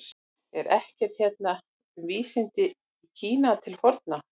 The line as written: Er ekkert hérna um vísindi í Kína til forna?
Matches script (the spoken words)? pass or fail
pass